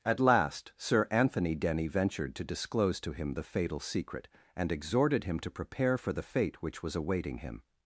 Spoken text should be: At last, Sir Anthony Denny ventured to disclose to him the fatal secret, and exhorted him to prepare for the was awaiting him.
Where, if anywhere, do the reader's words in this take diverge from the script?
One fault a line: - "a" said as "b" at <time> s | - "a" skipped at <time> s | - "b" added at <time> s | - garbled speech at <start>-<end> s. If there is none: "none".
- "fate which" added at 6.2 s